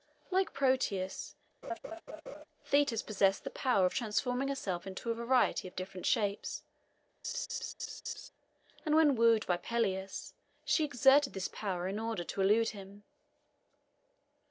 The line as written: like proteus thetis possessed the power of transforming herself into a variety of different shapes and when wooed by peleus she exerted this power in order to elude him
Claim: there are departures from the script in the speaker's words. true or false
false